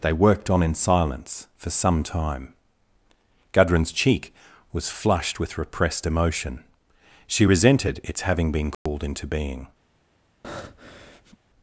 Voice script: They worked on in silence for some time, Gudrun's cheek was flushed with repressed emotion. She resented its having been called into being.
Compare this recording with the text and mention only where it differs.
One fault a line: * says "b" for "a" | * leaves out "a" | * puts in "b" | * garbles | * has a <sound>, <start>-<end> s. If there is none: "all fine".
* has a dropout, 8.7-8.9 s
* has a breath, 10.4-11.4 s